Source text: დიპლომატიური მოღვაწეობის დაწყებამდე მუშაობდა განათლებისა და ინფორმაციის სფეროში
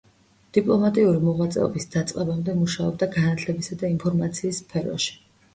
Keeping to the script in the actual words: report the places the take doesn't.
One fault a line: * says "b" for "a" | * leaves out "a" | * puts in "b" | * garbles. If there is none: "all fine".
all fine